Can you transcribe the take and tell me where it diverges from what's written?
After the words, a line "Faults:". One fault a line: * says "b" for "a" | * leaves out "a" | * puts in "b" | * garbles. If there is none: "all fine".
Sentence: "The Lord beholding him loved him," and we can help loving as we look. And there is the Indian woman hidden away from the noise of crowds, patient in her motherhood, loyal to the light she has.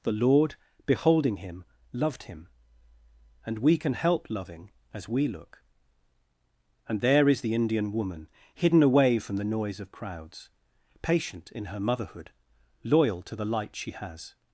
"The Lord beholding him loved him," and we can help loving as we look. And there is the Indian woman hidden away from the noise of crowds, patient in her motherhood, loyal to the light she has.
Faults:
all fine